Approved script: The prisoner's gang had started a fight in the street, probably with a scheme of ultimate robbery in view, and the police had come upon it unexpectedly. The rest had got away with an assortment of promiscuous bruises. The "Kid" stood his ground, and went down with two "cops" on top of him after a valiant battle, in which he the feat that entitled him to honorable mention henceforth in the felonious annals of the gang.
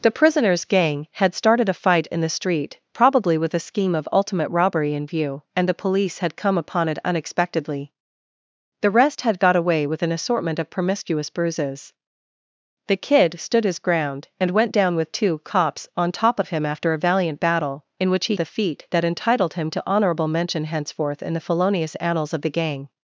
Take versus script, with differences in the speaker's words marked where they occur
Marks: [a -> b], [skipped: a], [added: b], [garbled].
The prisoner's gang had started a fight in the street, probably with a scheme of ultimate robbery in view, and the police had come upon it unexpectedly. The rest had got away with an assortment of promiscuous bruises. The "Kid" stood his ground, and went down with two "cops" on top of him after a valiant battle, in which he the feat that entitled him to honorable mention henceforth in the felonious annals of the gang.